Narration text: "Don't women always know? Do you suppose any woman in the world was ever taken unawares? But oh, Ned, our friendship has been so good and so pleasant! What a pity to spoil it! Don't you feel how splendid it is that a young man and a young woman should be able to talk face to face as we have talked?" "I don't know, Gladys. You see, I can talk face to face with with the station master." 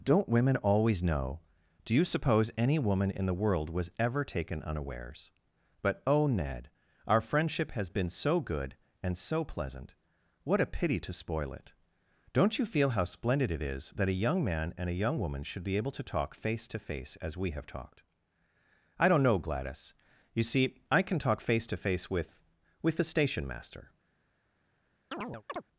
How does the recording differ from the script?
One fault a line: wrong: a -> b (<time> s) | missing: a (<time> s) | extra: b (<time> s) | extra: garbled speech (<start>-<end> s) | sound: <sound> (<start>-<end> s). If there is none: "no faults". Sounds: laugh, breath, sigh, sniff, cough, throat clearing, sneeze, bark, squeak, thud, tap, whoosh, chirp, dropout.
sound: chirp (25.1-25.6 s)